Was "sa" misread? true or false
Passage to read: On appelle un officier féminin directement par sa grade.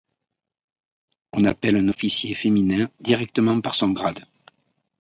true